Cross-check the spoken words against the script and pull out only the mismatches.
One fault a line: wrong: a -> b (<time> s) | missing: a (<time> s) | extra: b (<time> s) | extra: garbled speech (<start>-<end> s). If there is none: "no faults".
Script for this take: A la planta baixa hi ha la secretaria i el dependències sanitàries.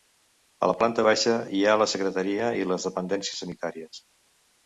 wrong: el -> les (2.7 s)